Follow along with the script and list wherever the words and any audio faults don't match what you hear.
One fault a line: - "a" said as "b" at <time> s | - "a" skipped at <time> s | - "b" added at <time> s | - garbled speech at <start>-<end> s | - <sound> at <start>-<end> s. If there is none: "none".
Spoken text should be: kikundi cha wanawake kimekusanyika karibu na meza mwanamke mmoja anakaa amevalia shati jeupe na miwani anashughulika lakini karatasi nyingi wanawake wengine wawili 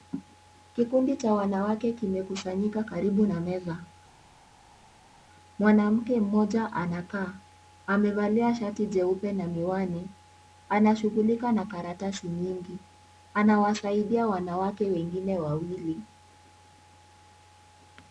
- "lakini" said as "na" at 11.5 s
- "anawasaidia" added at 13.3 s